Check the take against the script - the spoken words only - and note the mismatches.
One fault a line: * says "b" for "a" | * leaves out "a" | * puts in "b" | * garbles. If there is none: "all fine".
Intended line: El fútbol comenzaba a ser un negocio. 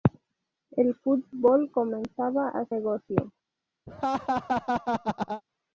* leaves out "ser un"